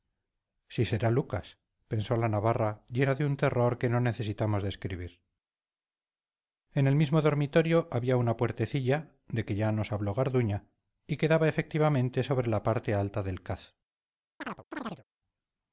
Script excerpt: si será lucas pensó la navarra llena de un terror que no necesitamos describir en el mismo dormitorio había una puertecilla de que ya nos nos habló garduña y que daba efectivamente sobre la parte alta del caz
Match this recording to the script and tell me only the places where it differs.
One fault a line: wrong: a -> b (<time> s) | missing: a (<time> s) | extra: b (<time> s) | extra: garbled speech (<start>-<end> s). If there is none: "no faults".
missing: nos (9.9 s)